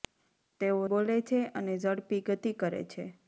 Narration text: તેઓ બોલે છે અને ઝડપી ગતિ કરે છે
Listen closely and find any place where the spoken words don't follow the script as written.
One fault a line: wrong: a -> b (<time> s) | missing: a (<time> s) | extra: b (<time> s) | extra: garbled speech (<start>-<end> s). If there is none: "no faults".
no faults